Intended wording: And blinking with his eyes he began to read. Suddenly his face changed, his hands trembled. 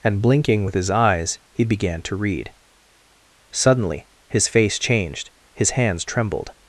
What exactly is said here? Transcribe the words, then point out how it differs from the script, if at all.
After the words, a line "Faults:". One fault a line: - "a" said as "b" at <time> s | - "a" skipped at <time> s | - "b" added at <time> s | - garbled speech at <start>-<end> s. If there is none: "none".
And blinking with his eyes he began to read. Suddenly his face changed, his hands trembled.
Faults:
none